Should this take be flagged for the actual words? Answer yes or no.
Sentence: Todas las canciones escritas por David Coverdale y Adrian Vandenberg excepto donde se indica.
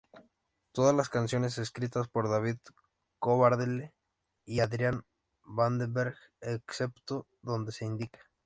no